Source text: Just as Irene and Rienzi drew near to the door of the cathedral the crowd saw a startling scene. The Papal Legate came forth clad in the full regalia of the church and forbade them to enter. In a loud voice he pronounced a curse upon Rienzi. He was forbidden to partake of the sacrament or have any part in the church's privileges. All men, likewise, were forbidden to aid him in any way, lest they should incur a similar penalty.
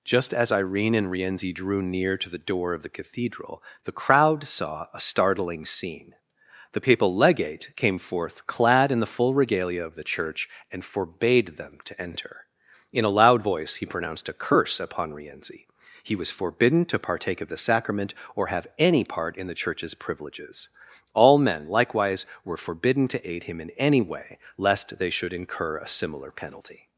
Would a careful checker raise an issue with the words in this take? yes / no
no